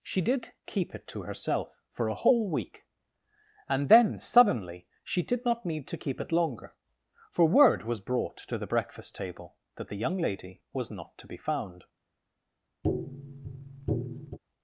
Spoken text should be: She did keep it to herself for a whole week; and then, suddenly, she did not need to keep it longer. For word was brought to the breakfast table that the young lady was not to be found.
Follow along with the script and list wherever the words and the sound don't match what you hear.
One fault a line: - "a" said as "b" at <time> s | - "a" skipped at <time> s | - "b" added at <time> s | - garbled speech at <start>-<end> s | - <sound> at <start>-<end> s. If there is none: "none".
- tap at 12.8-14.4 s